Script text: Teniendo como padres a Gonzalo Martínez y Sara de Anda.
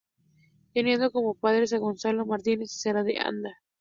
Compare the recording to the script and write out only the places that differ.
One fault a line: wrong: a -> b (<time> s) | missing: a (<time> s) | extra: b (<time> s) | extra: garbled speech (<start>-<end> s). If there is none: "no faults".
no faults